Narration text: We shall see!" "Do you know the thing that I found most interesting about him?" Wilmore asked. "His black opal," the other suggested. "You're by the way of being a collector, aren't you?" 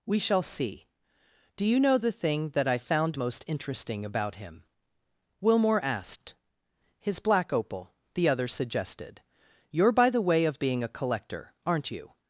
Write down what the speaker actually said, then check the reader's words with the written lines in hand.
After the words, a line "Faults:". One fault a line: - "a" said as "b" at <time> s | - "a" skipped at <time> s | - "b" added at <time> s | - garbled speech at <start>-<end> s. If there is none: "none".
We shall see!" "Do you know the thing that I found most interesting about him?" Wilmore asked. "His black opal," the other suggested. "You're by the way of being a collector, aren't you?"
Faults:
none